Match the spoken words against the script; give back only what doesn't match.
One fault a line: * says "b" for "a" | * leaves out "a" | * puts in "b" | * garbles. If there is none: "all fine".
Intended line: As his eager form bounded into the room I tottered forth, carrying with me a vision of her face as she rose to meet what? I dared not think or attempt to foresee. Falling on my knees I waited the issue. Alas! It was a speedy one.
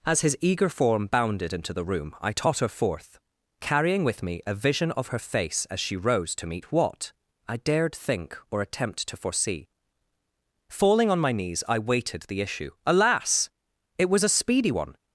* says "totter" for "tottered"
* leaves out "not"